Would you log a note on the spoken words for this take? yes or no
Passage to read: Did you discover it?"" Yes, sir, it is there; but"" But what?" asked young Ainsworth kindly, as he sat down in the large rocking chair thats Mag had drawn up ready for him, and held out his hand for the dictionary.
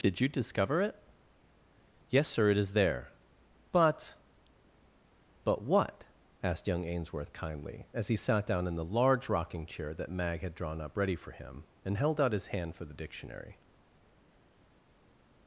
yes